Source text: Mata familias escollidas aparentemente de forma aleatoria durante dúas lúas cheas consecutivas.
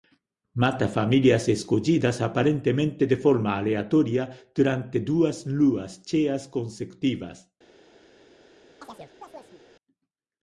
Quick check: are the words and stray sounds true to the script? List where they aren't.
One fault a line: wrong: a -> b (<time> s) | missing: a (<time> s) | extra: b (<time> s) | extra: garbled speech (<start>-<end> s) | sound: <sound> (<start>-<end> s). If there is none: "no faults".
sound: chirp (8.8-9.6 s)